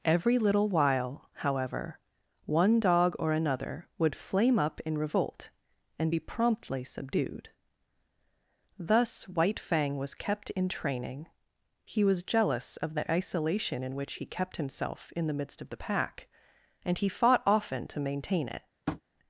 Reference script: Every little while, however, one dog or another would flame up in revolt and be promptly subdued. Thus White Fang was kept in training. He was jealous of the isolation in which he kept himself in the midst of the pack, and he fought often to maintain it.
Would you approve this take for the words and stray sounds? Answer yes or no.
no